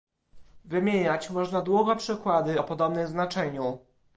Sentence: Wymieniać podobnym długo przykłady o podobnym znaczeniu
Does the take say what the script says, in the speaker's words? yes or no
no